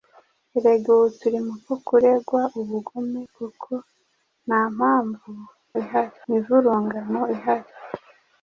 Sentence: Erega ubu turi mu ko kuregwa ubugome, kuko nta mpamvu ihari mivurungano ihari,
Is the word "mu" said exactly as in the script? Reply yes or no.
yes